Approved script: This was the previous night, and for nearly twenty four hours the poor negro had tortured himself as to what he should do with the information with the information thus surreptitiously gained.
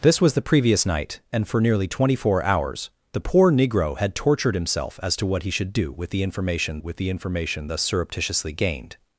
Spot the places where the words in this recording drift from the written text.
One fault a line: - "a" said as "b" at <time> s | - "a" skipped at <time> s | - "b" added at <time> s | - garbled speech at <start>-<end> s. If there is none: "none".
none